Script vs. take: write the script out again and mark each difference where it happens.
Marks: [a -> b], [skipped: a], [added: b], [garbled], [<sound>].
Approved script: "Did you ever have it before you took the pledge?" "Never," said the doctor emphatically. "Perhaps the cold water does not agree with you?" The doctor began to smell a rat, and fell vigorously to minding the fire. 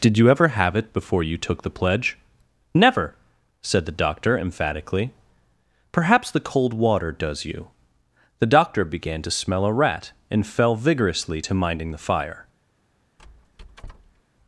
"Did you ever have it before you took the pledge?" "Never," said the doctor emphatically. "Perhaps the cold water does [skipped: not agree with] you?" The doctor began to smell a rat, and fell vigorously to minding the fire. [squeak]